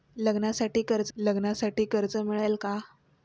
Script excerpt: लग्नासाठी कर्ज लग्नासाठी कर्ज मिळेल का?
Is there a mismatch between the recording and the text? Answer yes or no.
no